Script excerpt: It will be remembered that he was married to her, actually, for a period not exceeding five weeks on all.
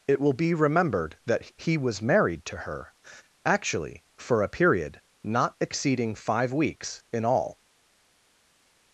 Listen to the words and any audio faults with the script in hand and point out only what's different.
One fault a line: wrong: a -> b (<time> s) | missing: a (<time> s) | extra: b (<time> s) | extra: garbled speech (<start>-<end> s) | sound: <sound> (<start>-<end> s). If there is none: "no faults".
wrong: on -> in (7.1 s)